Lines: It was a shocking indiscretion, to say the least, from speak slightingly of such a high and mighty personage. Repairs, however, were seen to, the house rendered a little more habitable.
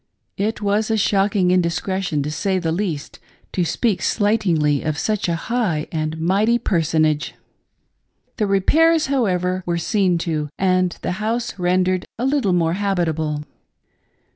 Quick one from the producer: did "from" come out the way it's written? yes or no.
no